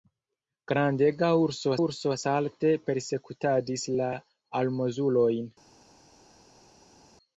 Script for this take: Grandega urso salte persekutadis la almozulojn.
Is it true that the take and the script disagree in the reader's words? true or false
true